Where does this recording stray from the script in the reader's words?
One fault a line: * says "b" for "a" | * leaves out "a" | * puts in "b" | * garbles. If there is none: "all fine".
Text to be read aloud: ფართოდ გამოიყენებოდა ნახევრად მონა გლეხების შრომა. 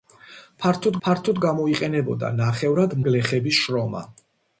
* puts in "ფართოდ"
* leaves out "მონა"